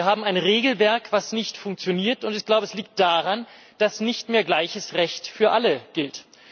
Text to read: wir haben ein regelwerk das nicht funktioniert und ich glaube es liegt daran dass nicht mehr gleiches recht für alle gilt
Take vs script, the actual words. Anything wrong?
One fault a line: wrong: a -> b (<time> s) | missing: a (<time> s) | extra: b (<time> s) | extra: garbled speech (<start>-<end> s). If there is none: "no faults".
no faults